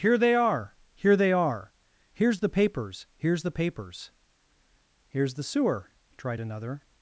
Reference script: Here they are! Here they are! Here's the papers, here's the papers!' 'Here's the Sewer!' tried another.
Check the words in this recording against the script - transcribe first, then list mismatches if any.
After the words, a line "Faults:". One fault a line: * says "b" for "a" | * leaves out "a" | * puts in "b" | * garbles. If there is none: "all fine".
Here they are! Here they are! Here's the papers, here's the papers!' 'Here's the Sewer!' tried another.
Faults:
all fine